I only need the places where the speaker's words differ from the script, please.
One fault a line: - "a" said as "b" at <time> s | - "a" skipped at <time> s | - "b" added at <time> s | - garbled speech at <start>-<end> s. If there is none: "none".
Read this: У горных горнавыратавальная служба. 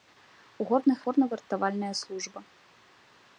none